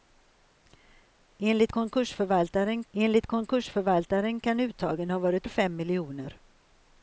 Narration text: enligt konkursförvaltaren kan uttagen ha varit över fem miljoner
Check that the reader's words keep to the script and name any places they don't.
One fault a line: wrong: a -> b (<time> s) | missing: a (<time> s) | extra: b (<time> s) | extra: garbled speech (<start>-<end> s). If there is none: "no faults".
extra: enligt konkursförvaltaren (2.9 s)
missing: över (5.5 s)